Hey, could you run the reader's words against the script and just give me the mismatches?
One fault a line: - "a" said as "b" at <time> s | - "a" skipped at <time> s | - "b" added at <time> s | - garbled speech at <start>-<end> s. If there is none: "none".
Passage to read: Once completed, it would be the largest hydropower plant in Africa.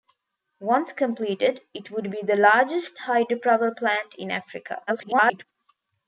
- garbled speech at 4.9-5.4 s